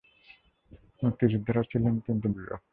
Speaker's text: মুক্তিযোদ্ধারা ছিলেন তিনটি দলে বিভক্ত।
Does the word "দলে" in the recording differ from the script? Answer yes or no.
yes